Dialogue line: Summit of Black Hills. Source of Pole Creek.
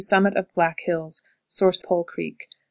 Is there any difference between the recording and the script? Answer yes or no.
yes